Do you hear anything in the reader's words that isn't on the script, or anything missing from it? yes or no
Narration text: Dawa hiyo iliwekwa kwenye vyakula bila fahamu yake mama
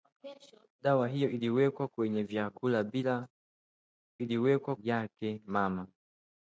yes